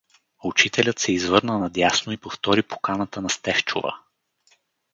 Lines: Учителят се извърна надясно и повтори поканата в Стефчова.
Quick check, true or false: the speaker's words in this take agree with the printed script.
false